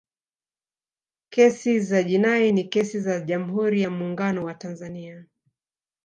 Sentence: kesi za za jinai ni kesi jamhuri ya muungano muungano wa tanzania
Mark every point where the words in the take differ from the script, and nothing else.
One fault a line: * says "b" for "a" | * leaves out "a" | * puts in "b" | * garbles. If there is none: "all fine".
* leaves out "za"
* puts in "za"
* leaves out "muungano"